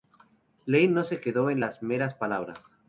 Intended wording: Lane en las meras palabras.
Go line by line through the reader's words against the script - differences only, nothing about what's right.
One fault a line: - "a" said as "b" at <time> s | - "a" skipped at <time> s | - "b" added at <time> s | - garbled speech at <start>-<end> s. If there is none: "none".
- "no se quedó" added at 0.9 s